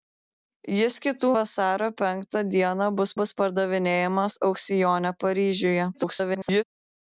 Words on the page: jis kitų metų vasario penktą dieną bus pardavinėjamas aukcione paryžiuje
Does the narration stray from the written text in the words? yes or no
yes